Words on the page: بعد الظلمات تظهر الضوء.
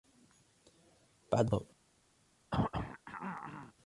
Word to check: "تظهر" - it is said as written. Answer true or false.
false